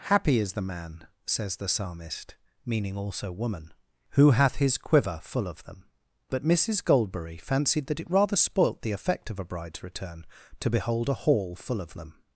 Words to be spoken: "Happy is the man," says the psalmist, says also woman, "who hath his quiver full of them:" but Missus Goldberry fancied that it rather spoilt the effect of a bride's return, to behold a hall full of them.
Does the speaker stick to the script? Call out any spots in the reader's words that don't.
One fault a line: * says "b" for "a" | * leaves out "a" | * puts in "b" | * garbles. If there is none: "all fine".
* says "meaning" for "says"